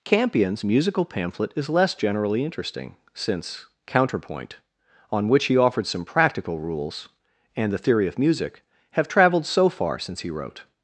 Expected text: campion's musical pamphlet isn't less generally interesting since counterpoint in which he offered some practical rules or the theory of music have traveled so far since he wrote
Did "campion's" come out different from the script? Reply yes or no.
no